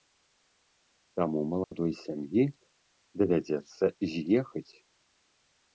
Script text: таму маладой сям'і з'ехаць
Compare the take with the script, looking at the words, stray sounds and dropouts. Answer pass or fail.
fail